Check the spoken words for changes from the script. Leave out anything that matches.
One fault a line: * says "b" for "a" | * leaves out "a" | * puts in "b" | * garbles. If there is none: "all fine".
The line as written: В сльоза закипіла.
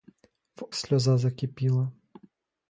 all fine